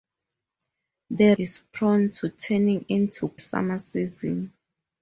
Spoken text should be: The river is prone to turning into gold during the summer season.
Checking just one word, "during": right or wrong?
wrong